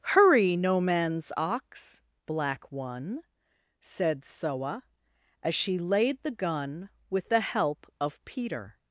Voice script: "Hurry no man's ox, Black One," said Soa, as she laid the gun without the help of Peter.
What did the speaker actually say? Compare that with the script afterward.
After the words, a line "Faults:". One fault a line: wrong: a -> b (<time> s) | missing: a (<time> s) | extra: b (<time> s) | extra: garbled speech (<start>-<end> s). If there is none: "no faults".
"Hurry no man's ox, Black One," said Soa, as she laid the gun with the help of Peter.
Faults:
wrong: without -> with (7.1 s)